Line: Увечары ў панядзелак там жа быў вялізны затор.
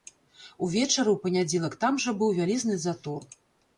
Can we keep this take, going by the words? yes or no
yes